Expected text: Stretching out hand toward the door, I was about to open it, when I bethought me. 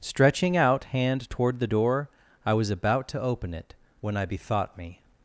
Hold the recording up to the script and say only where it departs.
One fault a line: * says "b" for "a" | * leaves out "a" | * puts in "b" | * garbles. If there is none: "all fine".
all fine